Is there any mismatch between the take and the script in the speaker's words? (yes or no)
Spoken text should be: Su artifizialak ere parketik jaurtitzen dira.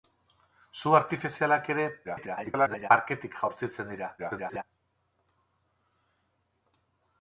yes